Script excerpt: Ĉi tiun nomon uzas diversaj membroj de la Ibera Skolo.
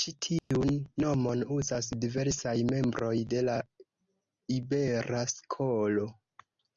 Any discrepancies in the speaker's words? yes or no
no